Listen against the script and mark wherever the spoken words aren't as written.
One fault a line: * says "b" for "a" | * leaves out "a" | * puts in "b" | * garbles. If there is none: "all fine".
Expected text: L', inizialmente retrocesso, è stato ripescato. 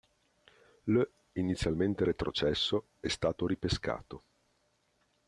all fine